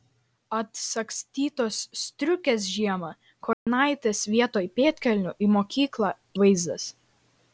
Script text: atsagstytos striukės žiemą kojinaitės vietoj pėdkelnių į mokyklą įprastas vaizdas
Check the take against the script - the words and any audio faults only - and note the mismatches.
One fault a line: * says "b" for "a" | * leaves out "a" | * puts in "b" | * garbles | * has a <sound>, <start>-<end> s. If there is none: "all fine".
* has a dropout, 3.5-3.7 s
* leaves out "įprastas"